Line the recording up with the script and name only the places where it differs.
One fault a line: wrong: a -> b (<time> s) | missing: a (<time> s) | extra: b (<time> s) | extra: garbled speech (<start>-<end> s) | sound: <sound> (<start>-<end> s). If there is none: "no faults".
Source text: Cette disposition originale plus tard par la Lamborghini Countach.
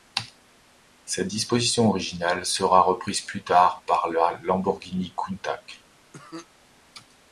extra: sera reprise (2.5 s)
sound: cough (6.1-6.5 s)